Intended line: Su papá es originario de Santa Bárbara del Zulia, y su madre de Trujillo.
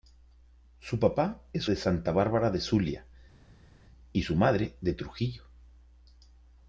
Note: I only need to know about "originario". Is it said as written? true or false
false